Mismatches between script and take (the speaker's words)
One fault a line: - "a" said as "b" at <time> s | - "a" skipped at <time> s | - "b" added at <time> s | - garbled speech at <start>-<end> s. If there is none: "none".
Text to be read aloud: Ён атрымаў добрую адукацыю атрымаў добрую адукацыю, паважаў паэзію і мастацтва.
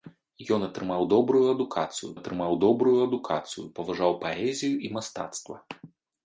none